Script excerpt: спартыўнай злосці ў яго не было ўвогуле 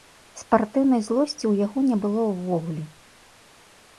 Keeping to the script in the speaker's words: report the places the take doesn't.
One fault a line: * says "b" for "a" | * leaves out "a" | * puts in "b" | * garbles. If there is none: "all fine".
all fine